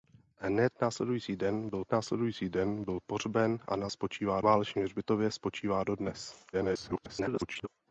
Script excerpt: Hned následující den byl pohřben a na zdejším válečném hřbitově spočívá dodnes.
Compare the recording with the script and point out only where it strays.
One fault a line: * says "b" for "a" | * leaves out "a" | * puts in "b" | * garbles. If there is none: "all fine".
* puts in "následující den byl"
* says "spočívá" for "zdejším"
* garbles